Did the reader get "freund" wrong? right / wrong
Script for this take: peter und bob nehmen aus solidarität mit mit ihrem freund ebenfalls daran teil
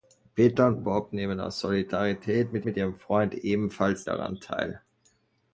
right